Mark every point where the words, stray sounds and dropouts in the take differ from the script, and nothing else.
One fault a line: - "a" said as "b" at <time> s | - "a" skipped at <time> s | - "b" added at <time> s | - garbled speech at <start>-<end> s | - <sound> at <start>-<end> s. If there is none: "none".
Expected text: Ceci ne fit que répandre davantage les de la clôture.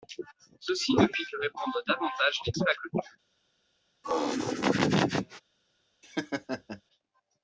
- laugh at 4.0-5.4 s
- laugh at 6.0-6.8 s